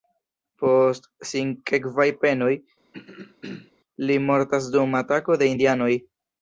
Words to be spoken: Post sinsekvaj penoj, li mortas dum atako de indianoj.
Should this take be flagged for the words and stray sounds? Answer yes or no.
yes